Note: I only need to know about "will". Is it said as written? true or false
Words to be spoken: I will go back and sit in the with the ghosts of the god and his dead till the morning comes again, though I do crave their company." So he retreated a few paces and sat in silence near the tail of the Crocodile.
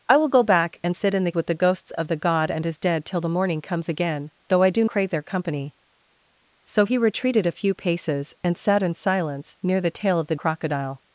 true